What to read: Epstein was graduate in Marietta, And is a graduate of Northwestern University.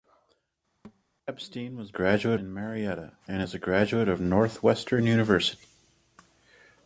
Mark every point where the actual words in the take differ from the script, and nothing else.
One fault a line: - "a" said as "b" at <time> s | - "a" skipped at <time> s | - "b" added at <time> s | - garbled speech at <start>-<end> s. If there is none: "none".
none